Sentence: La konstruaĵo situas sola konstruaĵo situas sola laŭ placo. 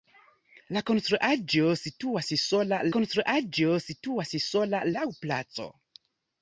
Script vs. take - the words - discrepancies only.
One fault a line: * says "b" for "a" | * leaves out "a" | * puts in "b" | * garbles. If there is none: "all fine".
all fine